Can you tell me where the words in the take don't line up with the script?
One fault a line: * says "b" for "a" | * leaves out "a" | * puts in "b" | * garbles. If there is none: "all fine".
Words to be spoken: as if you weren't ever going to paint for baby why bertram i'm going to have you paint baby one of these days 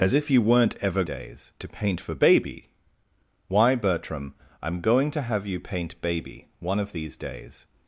* says "days" for "going"